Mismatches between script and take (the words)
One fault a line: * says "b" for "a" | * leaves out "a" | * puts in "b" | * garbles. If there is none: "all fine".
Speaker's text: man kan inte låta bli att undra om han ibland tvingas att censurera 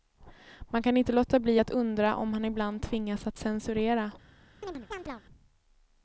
all fine